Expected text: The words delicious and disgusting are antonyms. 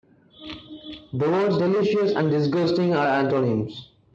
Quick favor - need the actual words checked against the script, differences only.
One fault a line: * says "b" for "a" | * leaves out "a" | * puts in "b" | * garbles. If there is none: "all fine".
all fine